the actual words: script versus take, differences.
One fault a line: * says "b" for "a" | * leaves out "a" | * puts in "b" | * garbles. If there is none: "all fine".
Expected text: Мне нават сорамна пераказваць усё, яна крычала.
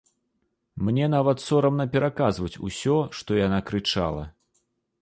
* puts in "што"